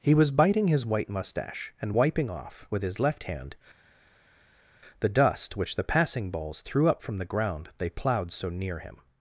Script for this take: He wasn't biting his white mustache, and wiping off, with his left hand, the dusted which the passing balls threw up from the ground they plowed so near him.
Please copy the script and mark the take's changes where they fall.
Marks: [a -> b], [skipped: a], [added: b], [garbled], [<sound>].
He [wasn't -> was] biting his white mustache, and wiping off, with his left hand, the [dusted -> dust] which the passing balls threw up from the ground they plowed so near him.